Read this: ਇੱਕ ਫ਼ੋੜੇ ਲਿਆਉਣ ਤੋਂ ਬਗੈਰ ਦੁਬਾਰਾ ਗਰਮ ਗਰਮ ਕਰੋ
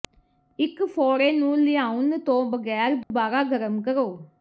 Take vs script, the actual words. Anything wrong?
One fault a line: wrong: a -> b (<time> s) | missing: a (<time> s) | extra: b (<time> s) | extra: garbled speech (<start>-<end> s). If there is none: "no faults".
extra: ਨੂੰ (1.3 s)
missing: ਗਰਮ (3.8 s)